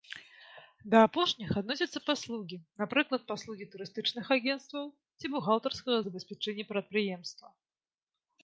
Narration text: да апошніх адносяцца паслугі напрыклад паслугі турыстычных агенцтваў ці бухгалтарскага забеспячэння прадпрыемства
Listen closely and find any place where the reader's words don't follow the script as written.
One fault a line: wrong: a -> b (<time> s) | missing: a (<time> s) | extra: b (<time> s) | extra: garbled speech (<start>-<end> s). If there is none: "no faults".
no faults